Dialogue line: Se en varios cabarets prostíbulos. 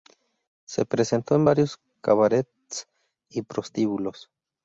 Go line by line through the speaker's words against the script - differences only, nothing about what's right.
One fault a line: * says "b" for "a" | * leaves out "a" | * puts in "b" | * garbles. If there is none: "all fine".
* puts in "presentó"
* puts in "y"